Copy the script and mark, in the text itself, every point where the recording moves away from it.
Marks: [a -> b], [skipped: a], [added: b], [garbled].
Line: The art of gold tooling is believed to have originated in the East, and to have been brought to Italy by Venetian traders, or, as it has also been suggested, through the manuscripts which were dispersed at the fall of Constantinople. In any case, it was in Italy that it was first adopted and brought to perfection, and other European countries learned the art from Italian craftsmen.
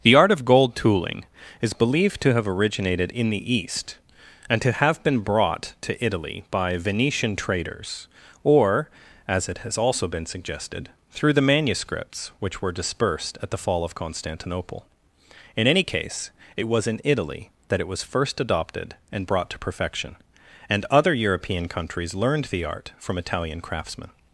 The art of gold tooling is believed to have originated in the East, and to have been brought to Italy by Venetian traders, or, as it has also been suggested, through the manuscripts which were dispersed at the fall of Constantinople. In any case, it was in Italy that it was first adopted and brought to perfection, and other European countries learned the art from Italian craftsmen.